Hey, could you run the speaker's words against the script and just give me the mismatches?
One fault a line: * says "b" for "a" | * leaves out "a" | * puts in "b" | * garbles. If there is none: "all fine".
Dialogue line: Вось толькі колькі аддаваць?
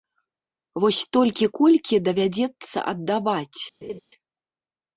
* puts in "давядзецца"